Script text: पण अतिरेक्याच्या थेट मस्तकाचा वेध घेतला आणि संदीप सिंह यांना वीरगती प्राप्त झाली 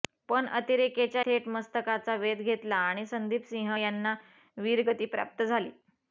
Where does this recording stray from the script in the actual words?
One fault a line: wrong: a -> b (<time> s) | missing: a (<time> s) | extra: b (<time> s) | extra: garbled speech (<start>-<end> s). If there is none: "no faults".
no faults